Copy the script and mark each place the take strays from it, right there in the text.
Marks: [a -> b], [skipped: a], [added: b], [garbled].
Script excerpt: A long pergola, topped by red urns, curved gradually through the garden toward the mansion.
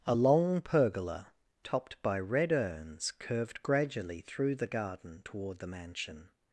A long pergola, topped by red urns, curved gradually through the garden toward the mansion.